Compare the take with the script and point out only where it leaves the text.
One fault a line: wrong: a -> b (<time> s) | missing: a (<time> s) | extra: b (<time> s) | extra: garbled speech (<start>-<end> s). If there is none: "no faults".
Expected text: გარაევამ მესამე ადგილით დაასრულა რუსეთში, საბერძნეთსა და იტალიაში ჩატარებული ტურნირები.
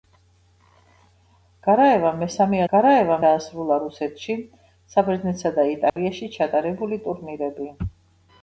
wrong: ადგილით -> გარაევამ (2.7 s)